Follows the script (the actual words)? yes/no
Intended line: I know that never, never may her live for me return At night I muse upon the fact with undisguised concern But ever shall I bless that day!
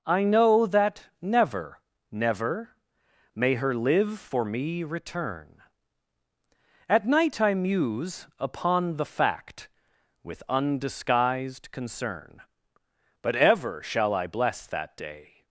yes